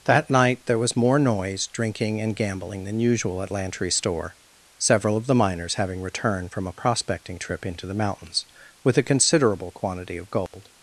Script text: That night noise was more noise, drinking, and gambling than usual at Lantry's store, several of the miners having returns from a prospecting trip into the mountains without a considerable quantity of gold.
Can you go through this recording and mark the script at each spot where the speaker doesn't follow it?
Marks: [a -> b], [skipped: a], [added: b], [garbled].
That night [noise -> there] was more noise, drinking, and gambling than usual at Lantry's store, several of the miners having [returns -> returned] from a prospecting trip into the mountains [without -> with] a considerable quantity of gold.